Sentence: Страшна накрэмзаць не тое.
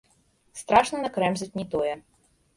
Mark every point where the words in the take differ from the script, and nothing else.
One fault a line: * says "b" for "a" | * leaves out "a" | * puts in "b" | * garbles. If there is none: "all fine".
all fine